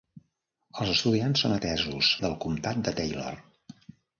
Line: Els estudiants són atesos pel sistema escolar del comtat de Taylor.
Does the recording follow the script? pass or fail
fail